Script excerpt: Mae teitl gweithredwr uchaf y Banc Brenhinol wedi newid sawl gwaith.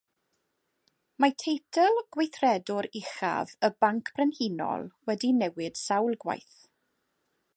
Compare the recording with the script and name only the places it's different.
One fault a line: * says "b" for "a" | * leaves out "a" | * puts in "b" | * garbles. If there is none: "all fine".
all fine